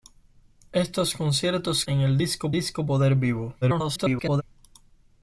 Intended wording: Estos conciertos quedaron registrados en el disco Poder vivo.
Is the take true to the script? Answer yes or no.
no